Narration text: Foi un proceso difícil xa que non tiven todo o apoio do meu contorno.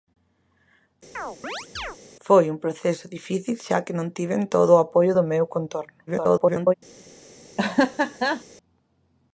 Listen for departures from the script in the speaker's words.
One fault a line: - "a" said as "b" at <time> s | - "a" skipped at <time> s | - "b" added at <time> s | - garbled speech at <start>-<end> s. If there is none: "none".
- garbled speech at 6.1-6.7 s